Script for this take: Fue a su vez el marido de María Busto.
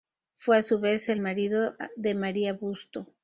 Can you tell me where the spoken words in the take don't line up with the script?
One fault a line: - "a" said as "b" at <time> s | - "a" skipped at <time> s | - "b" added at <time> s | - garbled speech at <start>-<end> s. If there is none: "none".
none